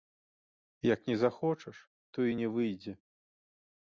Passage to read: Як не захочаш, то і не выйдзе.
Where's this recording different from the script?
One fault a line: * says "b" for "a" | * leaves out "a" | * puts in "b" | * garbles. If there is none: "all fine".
all fine